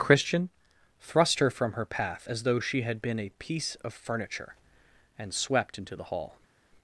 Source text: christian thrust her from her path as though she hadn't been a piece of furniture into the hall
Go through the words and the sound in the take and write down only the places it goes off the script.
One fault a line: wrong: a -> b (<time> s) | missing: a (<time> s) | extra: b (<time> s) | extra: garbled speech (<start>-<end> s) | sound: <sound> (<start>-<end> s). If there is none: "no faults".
wrong: hadn't -> had (2.8 s)
extra: and swept (5.2 s)